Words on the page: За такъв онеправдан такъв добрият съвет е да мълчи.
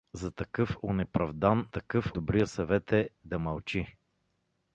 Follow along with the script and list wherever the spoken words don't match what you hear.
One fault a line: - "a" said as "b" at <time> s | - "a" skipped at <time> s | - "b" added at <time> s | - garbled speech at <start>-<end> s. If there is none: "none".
none